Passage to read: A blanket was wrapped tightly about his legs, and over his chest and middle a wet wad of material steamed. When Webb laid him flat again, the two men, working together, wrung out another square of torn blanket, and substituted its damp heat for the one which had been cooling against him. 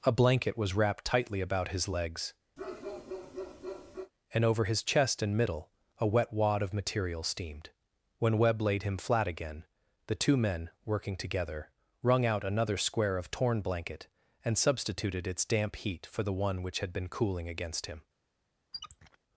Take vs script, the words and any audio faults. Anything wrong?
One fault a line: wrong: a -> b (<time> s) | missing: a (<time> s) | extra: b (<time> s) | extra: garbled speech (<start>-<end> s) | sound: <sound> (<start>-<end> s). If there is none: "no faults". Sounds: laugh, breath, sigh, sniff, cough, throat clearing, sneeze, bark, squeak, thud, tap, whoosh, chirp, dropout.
sound: bark (2.6-4.1 s)
sound: squeak (18.7-19.2 s)